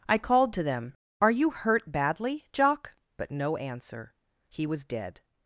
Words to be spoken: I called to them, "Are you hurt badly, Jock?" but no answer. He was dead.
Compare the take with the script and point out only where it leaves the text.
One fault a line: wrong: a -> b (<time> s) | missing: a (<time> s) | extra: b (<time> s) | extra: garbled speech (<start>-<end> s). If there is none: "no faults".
no faults